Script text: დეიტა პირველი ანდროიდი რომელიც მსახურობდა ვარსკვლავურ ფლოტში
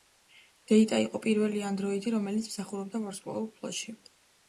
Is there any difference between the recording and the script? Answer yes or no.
yes